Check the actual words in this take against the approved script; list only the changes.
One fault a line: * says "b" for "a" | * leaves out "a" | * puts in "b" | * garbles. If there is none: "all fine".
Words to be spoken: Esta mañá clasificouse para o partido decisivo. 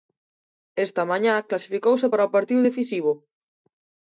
all fine